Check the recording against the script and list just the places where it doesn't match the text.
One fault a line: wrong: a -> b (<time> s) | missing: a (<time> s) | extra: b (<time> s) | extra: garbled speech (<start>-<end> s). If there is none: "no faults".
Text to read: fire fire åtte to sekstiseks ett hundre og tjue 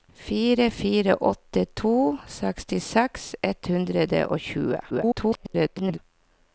extra: garbled speech (4.9-6.0 s)